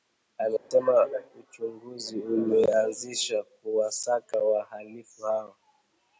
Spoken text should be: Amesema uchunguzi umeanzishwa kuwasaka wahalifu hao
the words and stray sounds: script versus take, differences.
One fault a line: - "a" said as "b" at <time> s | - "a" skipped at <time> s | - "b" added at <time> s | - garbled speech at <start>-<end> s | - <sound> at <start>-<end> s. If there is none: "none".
- dropout at 0.6-0.7 s